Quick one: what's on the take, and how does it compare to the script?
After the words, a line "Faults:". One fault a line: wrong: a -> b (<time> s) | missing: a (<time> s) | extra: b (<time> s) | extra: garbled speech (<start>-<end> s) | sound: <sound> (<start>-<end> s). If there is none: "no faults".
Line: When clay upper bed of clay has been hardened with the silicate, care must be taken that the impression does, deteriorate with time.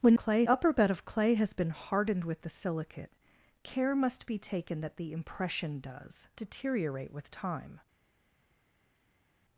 When clay upper bed of clay has been hardened with the silicate, care must be taken that the impression does, deteriorate with time.
Faults:
no faults